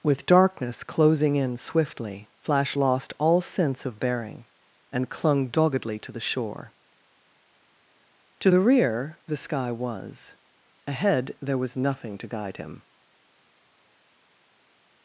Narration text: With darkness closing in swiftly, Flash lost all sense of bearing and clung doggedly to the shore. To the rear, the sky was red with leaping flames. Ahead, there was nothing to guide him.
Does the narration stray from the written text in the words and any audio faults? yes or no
yes